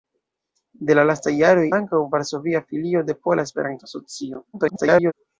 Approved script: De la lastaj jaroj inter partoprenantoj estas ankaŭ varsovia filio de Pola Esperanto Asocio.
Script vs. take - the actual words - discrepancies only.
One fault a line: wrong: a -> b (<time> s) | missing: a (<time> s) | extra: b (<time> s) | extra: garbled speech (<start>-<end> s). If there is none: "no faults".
missing: inter partoprenantoj estas (1.6 s)
extra: garbled speech (4.5-5.1 s)